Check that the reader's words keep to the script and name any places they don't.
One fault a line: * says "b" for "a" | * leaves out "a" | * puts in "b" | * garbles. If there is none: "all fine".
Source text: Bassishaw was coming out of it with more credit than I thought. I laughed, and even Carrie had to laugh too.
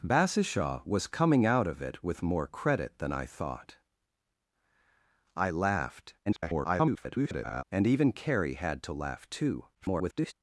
* garbles
* garbles